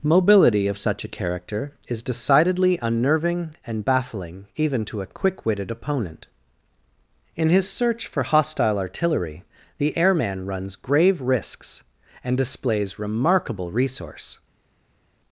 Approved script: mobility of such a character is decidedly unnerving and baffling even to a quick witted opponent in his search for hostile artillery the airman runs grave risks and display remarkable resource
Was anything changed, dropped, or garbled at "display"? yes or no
yes